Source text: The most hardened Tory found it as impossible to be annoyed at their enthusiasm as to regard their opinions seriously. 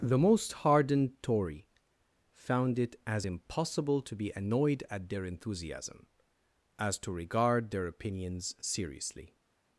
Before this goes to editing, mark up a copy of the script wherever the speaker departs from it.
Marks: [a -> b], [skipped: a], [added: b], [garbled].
The most hardened Tory found it as impossible to be annoyed at their enthusiasm as to regard their opinions seriously.